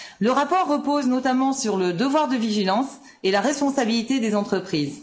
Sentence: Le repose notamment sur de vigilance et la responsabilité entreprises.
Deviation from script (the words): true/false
true